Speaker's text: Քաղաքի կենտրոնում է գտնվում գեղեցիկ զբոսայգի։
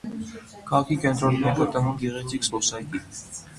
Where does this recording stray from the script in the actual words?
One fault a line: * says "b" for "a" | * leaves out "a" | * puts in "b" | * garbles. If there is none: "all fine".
all fine